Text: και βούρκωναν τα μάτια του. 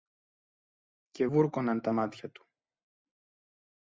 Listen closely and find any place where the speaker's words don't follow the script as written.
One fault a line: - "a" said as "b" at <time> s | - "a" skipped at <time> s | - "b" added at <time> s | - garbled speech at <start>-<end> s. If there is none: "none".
none